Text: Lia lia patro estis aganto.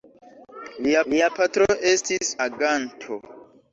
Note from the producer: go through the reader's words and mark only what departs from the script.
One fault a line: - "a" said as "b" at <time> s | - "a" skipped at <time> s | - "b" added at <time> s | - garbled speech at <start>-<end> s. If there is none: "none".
none